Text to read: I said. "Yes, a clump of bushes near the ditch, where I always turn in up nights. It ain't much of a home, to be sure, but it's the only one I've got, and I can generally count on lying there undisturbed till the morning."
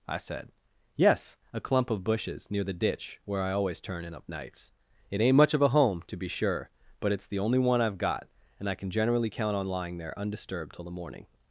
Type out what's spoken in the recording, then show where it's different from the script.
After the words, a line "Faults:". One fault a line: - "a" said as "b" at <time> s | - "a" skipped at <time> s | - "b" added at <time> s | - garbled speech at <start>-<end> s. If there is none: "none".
I said. "Yes, a clump of bushes near the ditch, where I always turn in up nights. It ain't much of a home, to be sure, but it's the only one I've got, and I can generally count on lying there undisturbed till the morning."
Faults:
none